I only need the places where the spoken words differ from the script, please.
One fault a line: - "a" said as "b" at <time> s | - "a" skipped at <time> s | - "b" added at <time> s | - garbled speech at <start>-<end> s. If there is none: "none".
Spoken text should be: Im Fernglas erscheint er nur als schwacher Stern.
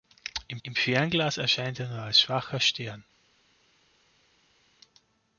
- "im" added at 0.6 s